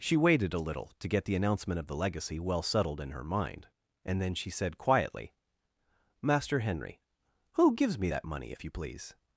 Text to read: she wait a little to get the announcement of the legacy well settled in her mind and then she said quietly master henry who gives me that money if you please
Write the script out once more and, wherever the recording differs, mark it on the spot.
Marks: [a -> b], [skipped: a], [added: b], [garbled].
she [wait -> waited] a little to get the announcement of the legacy well settled in her mind and then she said quietly master henry who gives me that money if you please